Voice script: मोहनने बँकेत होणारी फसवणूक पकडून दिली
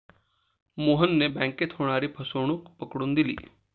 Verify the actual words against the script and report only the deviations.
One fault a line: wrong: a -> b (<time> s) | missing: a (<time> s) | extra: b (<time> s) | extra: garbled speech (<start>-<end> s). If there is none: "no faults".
no faults